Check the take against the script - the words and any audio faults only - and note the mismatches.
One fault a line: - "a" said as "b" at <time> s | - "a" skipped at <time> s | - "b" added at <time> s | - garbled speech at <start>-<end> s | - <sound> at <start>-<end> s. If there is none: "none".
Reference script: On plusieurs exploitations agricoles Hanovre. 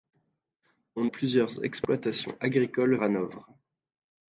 none